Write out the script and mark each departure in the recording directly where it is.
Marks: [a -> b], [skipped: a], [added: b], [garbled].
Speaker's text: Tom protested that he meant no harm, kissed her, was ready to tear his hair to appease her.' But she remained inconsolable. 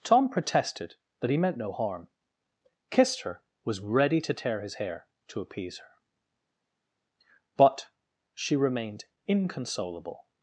Tom protested that he meant no harm, kissed her, was ready to tear his hair to appease her.' But she remained inconsolable.